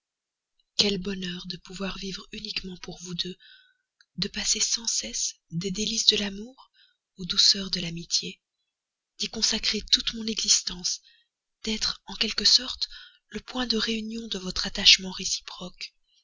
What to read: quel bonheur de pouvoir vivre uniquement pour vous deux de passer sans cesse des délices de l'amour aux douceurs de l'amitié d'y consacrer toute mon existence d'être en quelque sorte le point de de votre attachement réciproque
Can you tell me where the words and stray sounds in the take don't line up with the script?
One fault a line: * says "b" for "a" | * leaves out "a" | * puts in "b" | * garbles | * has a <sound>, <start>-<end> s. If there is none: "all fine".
* puts in "réunion"